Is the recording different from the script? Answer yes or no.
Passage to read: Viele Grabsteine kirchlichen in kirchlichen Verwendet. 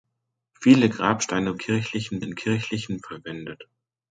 no